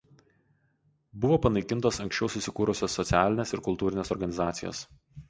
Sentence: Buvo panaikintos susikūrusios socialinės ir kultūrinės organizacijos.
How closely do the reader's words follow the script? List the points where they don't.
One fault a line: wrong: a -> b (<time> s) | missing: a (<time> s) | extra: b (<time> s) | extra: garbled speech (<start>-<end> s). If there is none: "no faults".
extra: anksčiau (2.0 s)